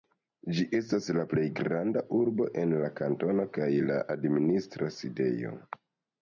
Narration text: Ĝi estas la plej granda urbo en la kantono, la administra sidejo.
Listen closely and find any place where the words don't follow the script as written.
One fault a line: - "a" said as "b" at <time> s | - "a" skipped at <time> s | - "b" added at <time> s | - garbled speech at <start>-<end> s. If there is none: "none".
- "kaj" added at 3.6 s